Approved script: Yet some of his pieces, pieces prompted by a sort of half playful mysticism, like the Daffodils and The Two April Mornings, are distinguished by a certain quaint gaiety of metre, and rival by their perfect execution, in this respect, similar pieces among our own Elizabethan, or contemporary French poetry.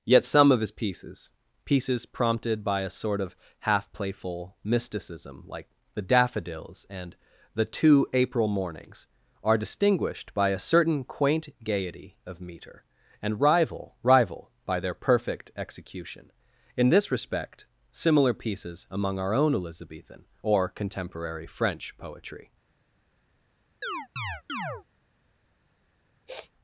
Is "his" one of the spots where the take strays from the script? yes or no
no